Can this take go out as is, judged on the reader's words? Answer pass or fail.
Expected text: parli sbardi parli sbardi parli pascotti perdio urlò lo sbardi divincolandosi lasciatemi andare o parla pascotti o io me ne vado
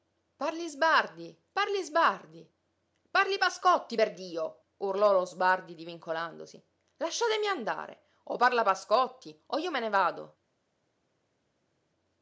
pass